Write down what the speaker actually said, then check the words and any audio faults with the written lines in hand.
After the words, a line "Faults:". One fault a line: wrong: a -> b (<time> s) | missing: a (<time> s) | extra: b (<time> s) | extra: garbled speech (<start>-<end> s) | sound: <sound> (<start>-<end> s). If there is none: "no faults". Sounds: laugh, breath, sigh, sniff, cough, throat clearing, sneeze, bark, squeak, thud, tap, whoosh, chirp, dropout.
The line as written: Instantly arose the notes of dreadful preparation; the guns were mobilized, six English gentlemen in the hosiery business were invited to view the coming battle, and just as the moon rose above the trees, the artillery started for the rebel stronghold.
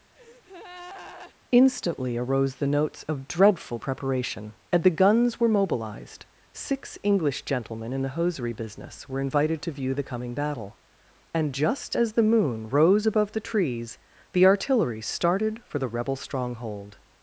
Instantly arose the notes of dreadful preparation; and the guns were mobilized, six English gentlemen in the hosiery business were invited to view the coming battle, and just as the moon rose above the trees, the artillery started for the rebel stronghold.
Faults:
sound: breath (0.2-1.4 s)
extra: and (4.7 s)